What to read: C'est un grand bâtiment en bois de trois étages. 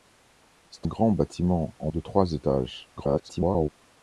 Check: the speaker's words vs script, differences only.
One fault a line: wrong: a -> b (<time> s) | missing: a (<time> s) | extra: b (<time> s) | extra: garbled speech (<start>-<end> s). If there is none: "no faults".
missing: un (0.9 s)
missing: bois (1.9 s)
extra: garbled speech (3.0-3.7 s)